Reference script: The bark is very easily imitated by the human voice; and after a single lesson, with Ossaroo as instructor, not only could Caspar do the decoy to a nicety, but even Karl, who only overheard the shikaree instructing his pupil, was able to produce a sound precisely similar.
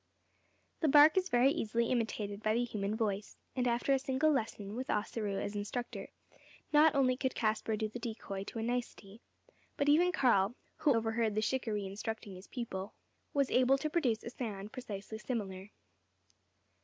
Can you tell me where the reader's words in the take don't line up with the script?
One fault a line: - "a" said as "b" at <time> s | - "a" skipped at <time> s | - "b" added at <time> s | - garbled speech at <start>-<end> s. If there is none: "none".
- "only" skipped at 10.9 s